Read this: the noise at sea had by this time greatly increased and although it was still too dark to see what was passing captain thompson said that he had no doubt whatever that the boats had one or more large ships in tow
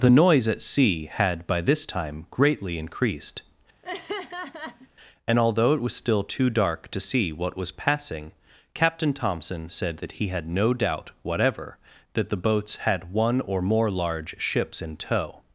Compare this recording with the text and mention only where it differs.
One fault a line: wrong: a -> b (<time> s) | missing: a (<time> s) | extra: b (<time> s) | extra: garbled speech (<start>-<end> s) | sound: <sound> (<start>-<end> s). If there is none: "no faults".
sound: laugh (3.8-4.9 s)